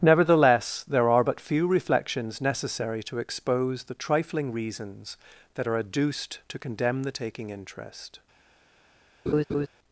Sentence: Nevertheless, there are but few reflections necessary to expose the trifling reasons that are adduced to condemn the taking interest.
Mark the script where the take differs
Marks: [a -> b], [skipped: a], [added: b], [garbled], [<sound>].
Nevertheless, there are but few reflections necessary to expose the trifling reasons that are adduced to condemn the taking interest. [laugh]